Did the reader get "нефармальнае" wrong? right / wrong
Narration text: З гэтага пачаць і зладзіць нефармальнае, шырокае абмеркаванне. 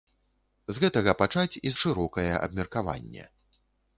wrong